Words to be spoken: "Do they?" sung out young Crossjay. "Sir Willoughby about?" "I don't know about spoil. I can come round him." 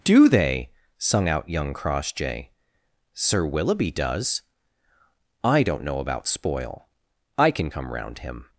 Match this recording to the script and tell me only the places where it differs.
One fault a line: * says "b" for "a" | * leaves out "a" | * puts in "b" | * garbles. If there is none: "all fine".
* says "does" for "about"